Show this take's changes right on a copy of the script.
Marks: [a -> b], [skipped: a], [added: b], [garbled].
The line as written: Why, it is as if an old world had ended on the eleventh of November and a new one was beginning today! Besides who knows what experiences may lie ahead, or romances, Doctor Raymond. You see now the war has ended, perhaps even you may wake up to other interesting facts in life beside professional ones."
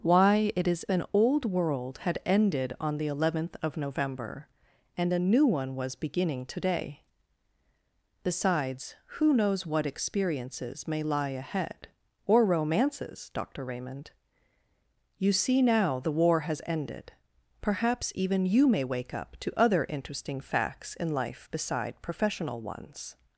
Why, it is [skipped: as if] an old world had ended on the eleventh of November and a new one was beginning today! Besides who knows what experiences may lie ahead, or romances, Doctor Raymond. You see now the war has ended, perhaps even you may wake up to other interesting facts in life beside professional ones."